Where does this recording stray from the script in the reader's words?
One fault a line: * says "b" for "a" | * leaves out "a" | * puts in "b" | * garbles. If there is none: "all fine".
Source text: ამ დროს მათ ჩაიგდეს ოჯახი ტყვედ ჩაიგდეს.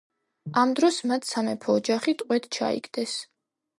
* says "სამეფო" for "ჩაიგდეს"